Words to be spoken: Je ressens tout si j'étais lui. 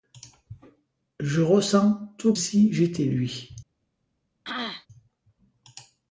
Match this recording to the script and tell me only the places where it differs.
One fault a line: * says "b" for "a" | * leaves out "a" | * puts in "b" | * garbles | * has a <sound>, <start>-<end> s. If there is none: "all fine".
* has a throat clearing, 4.4-4.9 s